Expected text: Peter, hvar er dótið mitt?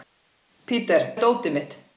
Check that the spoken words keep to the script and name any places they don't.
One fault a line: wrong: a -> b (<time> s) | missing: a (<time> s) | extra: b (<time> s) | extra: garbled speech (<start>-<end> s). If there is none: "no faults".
missing: hvar (1.1 s)